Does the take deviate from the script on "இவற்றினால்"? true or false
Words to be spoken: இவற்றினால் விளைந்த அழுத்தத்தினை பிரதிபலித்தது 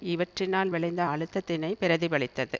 false